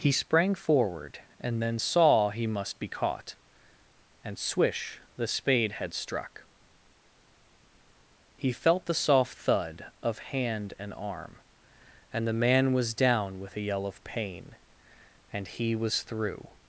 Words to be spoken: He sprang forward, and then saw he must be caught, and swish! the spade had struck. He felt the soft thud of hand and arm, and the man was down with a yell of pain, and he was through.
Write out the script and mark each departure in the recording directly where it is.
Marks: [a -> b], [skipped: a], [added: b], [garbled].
He sprang forward, and then saw he must be caught, and swish! the spade had struck. He felt the soft thud of hand and arm, and the man was down with a yell of pain, and he was through.